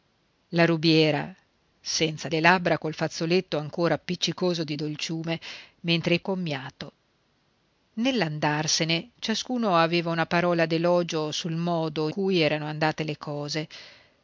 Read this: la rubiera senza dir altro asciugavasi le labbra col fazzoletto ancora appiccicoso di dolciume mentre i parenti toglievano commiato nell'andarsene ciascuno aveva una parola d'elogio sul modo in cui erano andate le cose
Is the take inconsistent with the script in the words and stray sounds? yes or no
yes